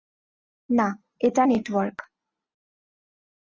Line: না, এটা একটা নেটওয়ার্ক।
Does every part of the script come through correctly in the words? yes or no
no